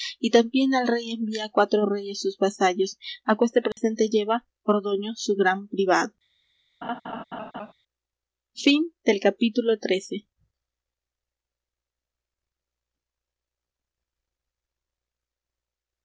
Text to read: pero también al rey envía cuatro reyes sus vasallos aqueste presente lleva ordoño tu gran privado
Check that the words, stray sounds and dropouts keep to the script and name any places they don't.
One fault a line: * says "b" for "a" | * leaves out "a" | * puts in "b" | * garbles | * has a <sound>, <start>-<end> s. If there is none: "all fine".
* says "y" for "pero"
* has a dropout, 3.7-3.8 s
* says "su" for "tu"
* has a laugh, 6.8-7.7 s